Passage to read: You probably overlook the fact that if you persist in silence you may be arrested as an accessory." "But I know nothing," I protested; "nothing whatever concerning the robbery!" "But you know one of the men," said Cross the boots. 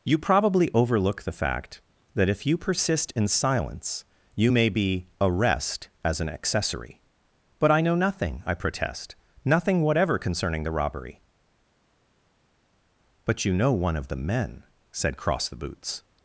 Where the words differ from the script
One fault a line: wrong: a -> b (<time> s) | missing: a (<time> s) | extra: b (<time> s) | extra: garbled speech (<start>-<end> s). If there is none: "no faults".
wrong: arrested -> arrest (5.2 s)
wrong: protested -> protest (8.5 s)